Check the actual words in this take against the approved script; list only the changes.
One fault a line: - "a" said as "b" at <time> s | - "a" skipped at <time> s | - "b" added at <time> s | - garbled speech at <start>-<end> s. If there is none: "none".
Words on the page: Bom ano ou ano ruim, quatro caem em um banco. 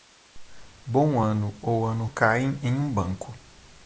- "ruim quatro" skipped at 2.0 s